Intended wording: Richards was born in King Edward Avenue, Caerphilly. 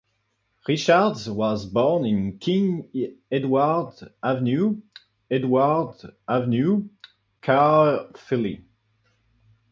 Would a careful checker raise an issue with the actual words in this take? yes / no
yes